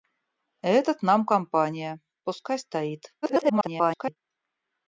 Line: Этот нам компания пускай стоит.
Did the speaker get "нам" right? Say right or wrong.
right